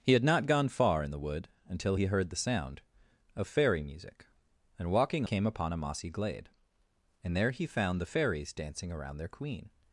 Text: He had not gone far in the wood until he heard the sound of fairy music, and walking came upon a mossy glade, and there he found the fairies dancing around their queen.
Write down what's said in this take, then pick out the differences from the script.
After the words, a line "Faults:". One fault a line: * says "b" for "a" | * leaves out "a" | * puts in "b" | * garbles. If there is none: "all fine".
He had not gone far in the wood until he heard the sound of fairy music, and walking came upon a mossy glade, and there he found the fairies dancing around their queen.
Faults:
all fine